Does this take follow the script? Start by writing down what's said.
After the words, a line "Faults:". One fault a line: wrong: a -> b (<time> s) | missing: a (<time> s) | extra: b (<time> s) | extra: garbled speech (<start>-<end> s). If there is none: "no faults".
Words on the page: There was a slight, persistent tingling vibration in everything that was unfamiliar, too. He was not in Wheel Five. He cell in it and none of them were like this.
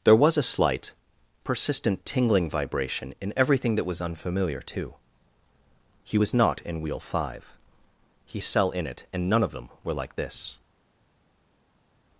There was a slight, persistent tingling vibration in everything that was unfamiliar, too. He was not in Wheel Five. He cell in it and none of them were like this.
Faults:
no faults